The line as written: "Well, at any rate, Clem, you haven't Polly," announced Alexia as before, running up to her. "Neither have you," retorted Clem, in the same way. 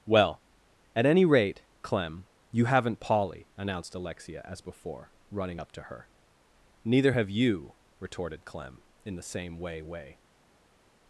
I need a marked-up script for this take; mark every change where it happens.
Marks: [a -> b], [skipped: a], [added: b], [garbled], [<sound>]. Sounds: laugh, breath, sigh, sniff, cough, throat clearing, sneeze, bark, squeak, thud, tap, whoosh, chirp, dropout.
"Well, at any rate, Clem, you haven't Polly," announced Alexia as before, running up to her. "Neither have you," retorted Clem, in the same way. [added: way]